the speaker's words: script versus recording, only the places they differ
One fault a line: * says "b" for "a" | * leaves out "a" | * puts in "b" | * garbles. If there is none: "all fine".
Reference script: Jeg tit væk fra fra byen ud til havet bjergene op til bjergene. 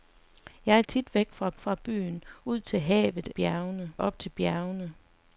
all fine